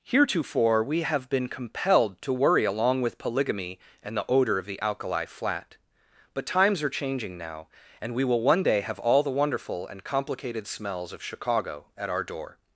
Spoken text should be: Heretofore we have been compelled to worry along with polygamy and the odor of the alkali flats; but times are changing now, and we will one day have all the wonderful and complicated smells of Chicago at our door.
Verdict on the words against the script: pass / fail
fail